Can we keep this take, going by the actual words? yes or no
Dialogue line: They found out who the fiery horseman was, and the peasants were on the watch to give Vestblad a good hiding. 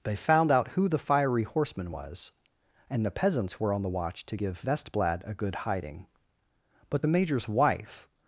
no